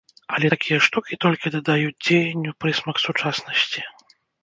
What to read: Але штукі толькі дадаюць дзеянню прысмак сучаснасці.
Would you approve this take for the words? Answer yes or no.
no